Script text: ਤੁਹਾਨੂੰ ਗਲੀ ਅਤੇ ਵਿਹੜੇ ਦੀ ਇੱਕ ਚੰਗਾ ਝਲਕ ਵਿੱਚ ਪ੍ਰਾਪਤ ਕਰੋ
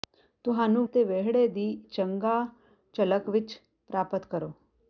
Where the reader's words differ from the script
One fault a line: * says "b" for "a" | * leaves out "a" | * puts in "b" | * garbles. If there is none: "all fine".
* leaves out "ਗਲੀ"
* leaves out "ਇੱਕ"